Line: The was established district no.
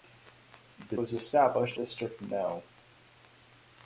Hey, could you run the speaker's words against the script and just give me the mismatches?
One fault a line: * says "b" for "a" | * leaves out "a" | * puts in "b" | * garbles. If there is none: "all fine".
all fine